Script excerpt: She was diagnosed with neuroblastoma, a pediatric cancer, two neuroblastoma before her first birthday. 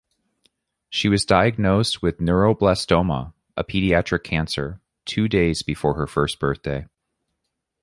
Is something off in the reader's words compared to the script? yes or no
yes